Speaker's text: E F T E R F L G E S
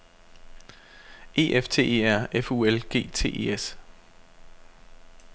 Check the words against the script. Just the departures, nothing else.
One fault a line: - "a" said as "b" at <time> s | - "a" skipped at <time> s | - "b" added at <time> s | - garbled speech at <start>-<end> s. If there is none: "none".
- "U" added at 2.5 s
- "T" added at 3.1 s